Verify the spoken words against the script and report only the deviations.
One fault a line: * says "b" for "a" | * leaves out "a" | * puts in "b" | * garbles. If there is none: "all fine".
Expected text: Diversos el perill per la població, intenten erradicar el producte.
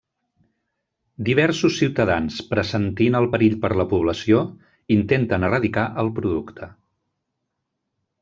* puts in "ciutadans pressentint"